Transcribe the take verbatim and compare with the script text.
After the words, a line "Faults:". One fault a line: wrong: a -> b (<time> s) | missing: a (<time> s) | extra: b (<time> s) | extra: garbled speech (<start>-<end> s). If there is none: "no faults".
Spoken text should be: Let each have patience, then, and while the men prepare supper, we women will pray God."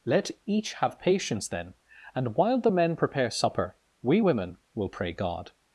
Let each have patience, then, and while the men prepare supper, we women will pray God."
Faults:
no faults